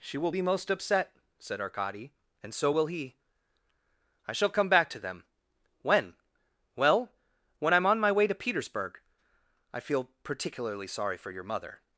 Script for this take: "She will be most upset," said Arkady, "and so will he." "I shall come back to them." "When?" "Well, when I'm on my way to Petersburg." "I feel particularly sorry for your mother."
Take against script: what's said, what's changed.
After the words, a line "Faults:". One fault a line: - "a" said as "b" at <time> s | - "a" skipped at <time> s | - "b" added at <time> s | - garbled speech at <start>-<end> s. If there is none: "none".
"She will be most upset," said Arkady, "and so will he." "I shall come back to them." "When?" "Well, when I'm on my way to Petersburg." "I feel particularly sorry for your mother."
Faults:
none